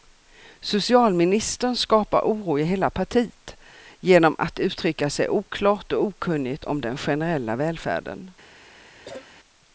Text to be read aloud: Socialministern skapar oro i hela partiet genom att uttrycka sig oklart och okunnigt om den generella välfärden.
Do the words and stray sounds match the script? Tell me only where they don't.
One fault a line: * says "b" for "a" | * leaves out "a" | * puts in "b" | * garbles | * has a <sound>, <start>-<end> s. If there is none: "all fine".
* has a cough, 9.0-9.3 s